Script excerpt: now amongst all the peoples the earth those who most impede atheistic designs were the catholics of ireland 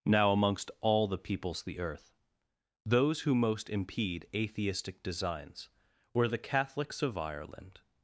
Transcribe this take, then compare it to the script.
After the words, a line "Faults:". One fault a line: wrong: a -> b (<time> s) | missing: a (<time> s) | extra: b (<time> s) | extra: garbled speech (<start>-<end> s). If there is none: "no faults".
now amongst all the peoples the earth those who most impede atheistic designs were the catholics of ireland
Faults:
no faults